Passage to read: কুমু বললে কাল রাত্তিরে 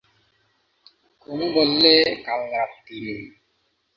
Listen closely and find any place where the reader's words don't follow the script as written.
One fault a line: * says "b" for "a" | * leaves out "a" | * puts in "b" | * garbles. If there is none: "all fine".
all fine